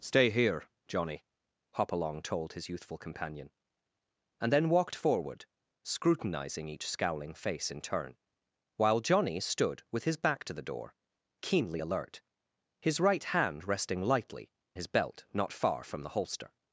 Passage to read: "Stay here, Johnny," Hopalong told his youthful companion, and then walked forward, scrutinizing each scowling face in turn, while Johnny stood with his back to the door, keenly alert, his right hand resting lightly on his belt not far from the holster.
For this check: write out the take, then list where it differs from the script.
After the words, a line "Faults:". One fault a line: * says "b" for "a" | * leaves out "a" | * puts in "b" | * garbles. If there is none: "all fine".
"Stay here, Johnny," Hopalong told his youthful companion, and then walked forward, scrutinizing each scowling face in turn, while Johnny stood with his back to the door, keenly alert, his right hand resting lightly his belt not far from the holster.
Faults:
* leaves out "on"